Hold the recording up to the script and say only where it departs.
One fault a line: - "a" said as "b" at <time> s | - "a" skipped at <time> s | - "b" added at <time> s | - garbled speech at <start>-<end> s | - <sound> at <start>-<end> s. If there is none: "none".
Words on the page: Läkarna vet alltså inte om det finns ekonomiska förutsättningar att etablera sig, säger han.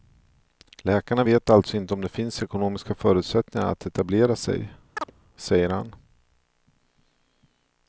- chirp at 5.0-5.1 s